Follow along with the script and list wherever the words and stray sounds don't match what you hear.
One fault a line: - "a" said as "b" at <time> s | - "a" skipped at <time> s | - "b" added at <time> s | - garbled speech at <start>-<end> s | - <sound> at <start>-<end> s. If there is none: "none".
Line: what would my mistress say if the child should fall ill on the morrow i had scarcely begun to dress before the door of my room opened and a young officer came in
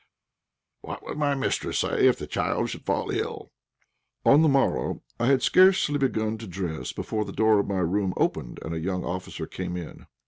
none